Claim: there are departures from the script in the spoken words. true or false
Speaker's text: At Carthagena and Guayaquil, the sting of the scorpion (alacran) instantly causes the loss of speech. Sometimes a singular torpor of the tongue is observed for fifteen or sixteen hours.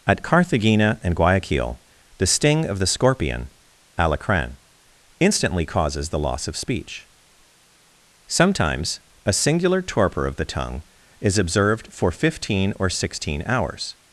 false